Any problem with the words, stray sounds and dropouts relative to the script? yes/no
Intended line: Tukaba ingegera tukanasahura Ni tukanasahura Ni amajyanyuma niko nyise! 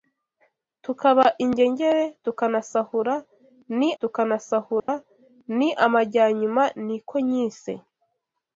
yes